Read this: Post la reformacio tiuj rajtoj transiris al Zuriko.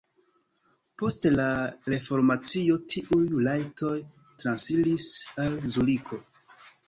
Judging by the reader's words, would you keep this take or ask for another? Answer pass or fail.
pass